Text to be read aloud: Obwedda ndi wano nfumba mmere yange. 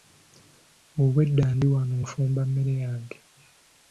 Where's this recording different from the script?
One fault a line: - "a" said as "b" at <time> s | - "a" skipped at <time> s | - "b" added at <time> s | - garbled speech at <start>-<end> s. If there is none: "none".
none